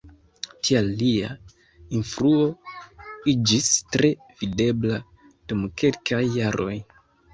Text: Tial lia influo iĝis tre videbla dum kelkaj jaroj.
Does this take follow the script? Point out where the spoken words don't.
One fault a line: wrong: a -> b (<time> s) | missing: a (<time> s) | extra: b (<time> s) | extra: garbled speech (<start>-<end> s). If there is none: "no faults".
no faults